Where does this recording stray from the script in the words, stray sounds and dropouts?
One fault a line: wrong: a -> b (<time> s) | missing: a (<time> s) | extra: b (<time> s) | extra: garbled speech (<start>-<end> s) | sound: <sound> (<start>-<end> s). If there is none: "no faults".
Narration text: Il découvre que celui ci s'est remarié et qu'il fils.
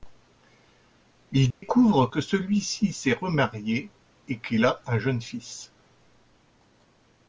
sound: dropout (1.5-1.6 s)
extra: a un jeune (4.6 s)